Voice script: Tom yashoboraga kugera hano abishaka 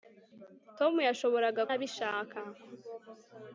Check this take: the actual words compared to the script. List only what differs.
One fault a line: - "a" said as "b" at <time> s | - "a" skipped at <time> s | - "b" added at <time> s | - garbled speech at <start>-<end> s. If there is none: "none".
- "kugera hano" skipped at 1.6 s